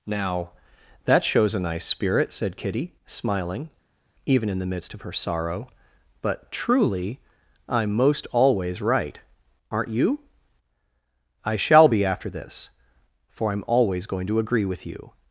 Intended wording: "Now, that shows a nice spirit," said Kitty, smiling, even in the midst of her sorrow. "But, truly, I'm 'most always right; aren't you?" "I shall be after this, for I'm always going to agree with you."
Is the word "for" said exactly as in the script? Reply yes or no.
yes